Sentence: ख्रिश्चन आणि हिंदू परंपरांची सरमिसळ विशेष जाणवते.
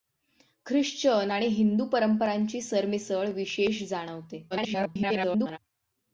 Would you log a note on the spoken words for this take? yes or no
yes